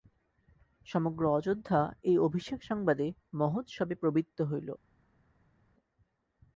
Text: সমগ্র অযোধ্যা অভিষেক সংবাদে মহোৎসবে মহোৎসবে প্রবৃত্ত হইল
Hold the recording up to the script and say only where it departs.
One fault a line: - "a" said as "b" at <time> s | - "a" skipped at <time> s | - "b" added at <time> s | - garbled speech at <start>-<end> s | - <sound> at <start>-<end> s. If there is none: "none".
- "এই" added at 2.0 s
- "মহোৎসবে" skipped at 4.0 s